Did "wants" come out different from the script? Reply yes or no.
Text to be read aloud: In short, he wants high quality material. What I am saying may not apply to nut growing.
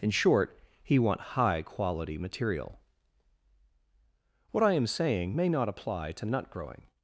yes